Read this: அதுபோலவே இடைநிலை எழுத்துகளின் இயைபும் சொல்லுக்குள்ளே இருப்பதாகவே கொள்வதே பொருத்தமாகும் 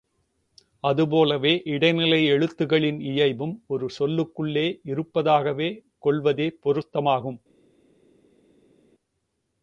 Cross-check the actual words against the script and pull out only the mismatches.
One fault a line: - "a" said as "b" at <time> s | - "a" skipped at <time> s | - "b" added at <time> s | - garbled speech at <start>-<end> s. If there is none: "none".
- "ஒரு" added at 3.7 s